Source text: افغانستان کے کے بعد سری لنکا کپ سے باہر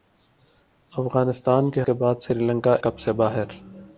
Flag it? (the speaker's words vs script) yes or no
no